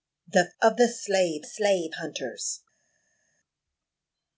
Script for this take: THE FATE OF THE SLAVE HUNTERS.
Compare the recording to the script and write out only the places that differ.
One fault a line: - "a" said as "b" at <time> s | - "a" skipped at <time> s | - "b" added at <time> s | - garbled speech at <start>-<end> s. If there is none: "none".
- "FATE" skipped at 0.5 s
- "SLAVE" added at 1.4 s